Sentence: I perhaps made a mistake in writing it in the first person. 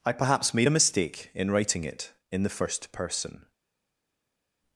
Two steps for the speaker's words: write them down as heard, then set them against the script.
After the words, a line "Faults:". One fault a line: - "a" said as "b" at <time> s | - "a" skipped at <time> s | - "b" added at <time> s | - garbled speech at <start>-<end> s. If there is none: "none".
I perhaps made a mistake in writing it in the first person.
Faults:
none